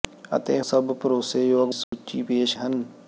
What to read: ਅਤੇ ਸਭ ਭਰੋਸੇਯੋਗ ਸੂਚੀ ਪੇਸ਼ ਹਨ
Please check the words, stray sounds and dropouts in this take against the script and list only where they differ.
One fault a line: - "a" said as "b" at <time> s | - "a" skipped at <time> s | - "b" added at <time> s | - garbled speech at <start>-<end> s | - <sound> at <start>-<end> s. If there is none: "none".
- dropout at 1.8-1.9 s